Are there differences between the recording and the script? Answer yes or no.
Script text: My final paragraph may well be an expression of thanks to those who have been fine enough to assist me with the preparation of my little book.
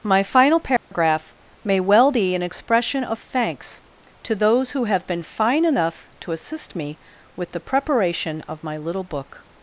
no